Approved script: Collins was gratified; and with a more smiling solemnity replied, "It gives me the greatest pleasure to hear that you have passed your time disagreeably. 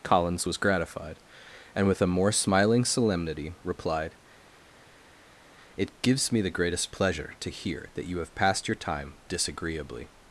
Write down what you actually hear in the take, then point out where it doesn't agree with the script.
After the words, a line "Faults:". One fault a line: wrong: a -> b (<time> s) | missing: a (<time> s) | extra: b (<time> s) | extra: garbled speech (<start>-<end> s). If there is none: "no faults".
Collins was gratified; and with a more smiling solemnity replied, "It gives me the greatest pleasure to hear that you have passed your time disagreeably.
Faults:
no faults